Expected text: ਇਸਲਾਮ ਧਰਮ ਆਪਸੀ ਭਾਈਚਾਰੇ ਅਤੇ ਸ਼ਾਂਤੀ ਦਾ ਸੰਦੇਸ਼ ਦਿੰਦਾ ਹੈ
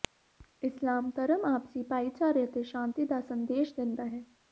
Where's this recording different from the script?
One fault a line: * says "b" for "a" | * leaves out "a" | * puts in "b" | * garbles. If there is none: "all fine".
all fine